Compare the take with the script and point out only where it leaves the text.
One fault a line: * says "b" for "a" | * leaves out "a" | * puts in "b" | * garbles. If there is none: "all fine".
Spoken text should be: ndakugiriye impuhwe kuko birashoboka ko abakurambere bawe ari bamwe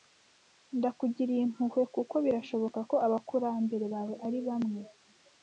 all fine